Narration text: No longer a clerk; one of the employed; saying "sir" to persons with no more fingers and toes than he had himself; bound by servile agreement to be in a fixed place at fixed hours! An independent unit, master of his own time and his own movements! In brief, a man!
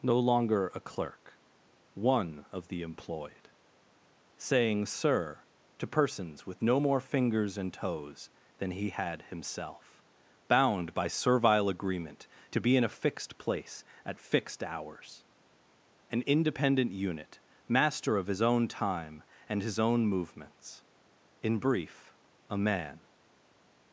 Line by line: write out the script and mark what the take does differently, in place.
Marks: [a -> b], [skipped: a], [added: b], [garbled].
No longer a clerk; one of the employed; saying "sir" to persons with no more fingers and toes than he had himself; bound by servile agreement to be in a fixed place at fixed hours! An independent unit, master of his own time and his own movements! In brief, a man!